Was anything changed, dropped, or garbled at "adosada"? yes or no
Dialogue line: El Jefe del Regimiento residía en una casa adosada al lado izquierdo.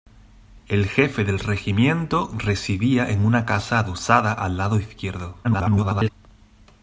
no